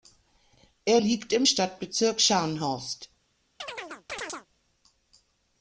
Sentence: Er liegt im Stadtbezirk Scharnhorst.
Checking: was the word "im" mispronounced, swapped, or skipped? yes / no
no